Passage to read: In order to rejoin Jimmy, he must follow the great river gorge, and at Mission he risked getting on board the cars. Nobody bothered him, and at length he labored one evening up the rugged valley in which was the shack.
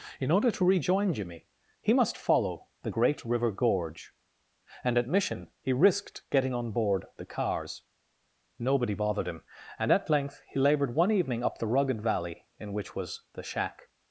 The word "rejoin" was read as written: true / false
true